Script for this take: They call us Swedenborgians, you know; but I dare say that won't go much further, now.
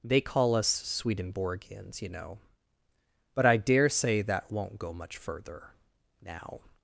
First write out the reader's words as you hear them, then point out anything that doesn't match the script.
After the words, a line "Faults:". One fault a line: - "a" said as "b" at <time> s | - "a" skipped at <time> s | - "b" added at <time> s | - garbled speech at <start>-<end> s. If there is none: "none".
They call us Swedenborgians, you know; but I dare say that won't go much further, now.
Faults:
none